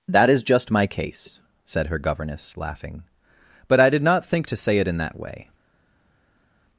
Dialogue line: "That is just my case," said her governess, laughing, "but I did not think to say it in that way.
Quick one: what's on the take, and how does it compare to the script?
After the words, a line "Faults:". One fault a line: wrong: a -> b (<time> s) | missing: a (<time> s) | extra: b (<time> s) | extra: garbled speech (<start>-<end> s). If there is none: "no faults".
"That is just my case," said her governess, laughing, "but I did not think to say it in that way.
Faults:
no faults